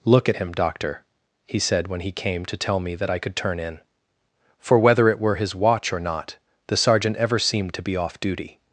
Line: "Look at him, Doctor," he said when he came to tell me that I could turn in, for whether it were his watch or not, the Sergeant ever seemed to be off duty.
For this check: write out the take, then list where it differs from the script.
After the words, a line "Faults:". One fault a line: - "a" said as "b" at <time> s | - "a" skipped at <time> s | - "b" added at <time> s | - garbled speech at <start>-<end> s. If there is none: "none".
"Look at him, Doctor," he said when he came to tell me that I could turn in, for whether it were his watch or not, the Sergeant ever seemed to be off duty.
Faults:
none